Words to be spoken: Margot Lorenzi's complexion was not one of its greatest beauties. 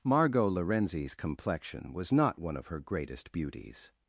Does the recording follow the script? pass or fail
fail